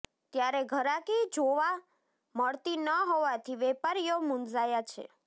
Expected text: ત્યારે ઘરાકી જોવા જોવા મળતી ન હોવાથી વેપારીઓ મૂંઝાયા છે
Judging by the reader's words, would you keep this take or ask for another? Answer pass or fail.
fail